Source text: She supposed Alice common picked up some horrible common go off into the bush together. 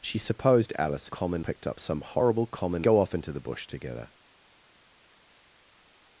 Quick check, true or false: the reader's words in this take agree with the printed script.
true